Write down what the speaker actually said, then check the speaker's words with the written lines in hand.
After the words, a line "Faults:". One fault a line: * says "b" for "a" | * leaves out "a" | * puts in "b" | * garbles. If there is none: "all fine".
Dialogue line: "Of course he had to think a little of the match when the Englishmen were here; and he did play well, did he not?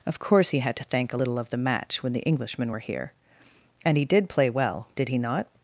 "Of course he had to thank a little of the match when the Englishmen were here; and he did play well, did he not?
Faults:
* says "thank" for "think"